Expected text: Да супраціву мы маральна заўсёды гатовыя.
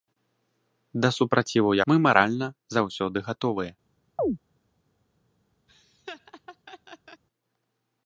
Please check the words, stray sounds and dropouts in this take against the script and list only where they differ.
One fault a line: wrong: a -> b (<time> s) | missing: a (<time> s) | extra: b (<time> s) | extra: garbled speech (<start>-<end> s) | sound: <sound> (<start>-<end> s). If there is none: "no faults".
sound: chirp (4.2-4.4 s)
sound: laugh (5.7-7.2 s)